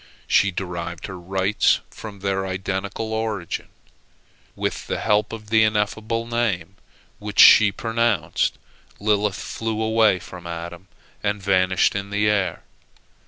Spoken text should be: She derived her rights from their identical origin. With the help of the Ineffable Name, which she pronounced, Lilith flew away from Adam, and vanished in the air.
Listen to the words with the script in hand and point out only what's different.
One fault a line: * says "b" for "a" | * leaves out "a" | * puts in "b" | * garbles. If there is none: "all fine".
all fine